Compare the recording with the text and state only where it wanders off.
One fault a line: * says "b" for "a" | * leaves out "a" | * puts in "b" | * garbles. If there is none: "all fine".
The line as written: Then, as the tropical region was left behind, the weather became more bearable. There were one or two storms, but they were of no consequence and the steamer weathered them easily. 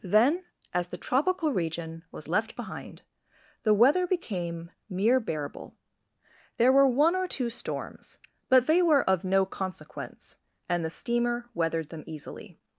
* says "mere" for "more"